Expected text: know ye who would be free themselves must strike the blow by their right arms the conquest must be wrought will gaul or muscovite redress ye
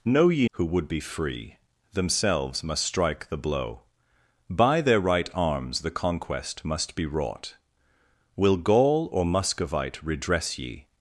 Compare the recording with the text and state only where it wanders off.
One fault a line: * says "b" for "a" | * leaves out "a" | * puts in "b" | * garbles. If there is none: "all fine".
all fine